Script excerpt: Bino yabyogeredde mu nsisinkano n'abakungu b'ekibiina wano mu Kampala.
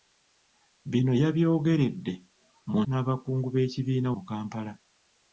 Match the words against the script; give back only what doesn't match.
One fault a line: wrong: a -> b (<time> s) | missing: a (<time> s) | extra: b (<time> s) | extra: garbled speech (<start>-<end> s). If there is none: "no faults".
missing: nsisinkano (2.8 s)
missing: wano (4.1 s)